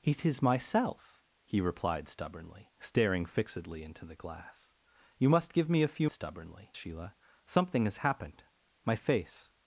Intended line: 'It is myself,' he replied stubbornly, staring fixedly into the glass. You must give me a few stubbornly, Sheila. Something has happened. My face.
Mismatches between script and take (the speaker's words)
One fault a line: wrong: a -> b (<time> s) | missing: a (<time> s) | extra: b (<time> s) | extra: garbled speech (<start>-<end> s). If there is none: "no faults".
no faults